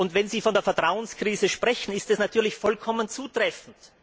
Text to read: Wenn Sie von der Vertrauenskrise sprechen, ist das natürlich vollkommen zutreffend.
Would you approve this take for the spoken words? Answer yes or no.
yes